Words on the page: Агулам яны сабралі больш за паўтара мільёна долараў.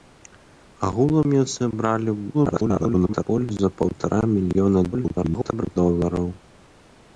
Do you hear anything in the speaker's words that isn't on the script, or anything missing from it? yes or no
yes